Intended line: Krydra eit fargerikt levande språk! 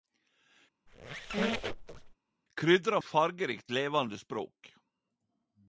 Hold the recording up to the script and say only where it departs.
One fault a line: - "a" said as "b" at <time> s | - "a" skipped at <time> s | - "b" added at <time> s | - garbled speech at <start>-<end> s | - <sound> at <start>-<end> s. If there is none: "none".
- squeak at 0.9-2.2 s